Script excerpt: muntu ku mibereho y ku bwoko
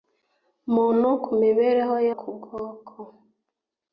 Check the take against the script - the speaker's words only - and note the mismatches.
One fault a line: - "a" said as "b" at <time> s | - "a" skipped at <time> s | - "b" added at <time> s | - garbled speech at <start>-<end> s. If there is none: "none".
none